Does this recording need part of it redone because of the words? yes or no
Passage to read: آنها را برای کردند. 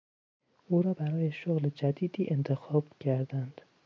yes